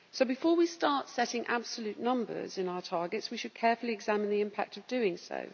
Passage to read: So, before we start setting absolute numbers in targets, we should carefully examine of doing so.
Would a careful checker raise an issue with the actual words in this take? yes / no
yes